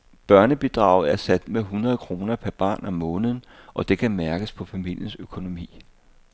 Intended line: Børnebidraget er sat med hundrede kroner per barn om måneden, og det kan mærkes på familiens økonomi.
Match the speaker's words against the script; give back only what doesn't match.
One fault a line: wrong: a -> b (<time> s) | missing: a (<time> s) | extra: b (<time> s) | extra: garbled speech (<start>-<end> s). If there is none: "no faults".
no faults